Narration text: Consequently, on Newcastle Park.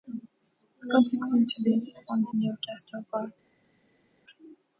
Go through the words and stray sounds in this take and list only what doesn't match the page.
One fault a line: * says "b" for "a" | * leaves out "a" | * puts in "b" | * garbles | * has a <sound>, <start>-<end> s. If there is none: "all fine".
all fine